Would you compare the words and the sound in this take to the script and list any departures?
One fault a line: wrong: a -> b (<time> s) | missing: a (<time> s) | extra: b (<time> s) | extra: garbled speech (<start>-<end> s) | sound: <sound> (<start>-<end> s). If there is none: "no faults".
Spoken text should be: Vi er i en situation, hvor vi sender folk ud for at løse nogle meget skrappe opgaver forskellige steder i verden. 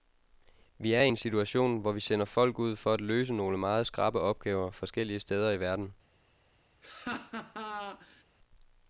sound: laugh (6.8-8.2 s)